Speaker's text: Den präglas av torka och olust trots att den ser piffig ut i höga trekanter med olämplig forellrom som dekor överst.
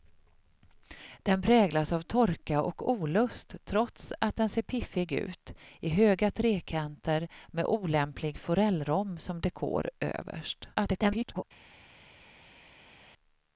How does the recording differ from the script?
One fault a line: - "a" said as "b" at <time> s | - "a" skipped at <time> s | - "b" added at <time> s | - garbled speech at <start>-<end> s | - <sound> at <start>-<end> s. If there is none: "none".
- garbled speech at 10.7-11.4 s